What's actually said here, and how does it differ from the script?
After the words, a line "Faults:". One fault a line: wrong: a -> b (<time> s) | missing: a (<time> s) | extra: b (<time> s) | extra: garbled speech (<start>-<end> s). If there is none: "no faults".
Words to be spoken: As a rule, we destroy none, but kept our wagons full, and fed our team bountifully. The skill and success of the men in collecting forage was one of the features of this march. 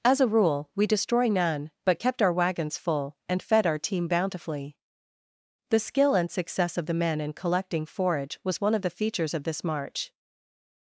As a rule, we destroy none, but kept our wagons full, and fed our team bountifully. The skill and success of the men in collecting forage was one of the features of this march.
Faults:
no faults